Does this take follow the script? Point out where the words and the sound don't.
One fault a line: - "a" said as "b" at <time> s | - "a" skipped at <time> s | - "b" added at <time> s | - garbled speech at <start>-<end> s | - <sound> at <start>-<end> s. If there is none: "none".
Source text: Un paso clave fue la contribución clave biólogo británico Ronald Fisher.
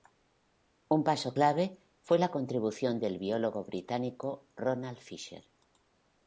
- "clave" said as "del" at 3.0 s